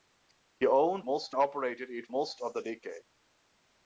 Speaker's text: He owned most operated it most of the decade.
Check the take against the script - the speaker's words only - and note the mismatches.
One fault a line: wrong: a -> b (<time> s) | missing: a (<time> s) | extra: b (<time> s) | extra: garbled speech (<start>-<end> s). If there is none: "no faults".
no faults